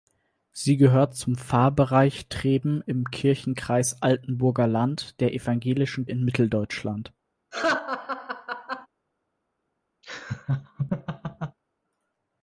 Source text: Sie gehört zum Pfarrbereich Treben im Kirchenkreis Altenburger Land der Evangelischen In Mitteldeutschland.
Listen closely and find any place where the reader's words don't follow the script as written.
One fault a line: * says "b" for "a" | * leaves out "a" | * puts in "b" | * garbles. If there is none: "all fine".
all fine